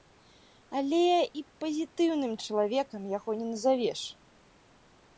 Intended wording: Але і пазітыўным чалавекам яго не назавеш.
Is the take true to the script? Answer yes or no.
yes